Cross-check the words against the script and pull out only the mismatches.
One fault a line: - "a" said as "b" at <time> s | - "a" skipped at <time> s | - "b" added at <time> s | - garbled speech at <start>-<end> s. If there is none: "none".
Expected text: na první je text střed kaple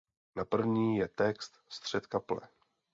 none